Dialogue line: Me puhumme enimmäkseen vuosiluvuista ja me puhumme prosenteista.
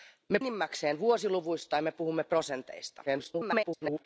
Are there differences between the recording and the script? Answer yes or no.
yes